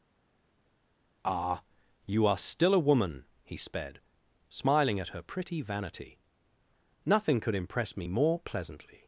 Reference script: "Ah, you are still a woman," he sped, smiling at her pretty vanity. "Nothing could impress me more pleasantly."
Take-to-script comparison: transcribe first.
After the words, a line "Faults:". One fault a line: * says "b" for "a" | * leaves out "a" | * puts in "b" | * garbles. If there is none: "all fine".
"Ah, you are still a woman," he sped, smiling at her pretty vanity. "Nothing could impress me more pleasantly."
Faults:
all fine